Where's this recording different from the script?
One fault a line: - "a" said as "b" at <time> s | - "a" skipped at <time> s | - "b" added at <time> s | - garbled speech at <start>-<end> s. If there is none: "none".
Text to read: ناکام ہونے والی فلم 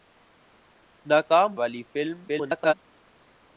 - "ہونے" skipped at 1.5 s
- garbled speech at 2.3-2.7 s